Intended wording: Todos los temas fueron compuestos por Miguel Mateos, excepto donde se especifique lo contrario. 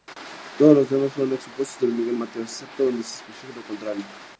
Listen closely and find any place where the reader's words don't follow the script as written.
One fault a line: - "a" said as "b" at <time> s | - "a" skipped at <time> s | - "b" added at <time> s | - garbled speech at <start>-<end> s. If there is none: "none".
none